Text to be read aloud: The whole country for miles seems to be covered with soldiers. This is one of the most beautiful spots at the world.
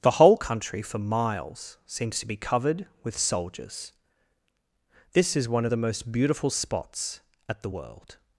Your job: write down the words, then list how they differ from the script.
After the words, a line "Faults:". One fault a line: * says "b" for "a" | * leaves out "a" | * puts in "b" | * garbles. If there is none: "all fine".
The whole country for miles seems to be covered with soldiers. This is one of the most beautiful spots at the world.
Faults:
all fine